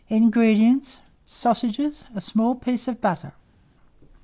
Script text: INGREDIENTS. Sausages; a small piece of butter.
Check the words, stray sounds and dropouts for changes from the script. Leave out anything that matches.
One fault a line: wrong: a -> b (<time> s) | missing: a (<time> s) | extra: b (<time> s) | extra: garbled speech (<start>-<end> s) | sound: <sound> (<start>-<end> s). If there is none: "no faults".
no faults